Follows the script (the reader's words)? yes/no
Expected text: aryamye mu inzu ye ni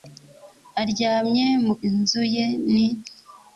yes